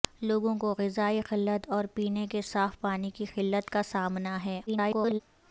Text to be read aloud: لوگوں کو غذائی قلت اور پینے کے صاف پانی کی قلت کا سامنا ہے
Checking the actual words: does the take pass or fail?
fail